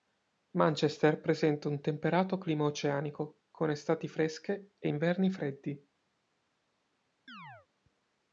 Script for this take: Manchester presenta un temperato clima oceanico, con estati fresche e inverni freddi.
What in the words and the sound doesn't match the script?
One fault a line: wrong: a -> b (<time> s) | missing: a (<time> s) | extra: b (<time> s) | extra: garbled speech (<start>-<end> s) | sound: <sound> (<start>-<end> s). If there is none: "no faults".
sound: chirp (7.3-7.7 s)